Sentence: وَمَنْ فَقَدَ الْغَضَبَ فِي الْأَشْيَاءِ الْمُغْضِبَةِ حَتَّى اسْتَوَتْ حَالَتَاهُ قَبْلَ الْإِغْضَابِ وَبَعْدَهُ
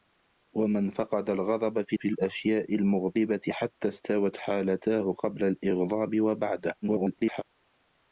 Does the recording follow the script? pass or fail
fail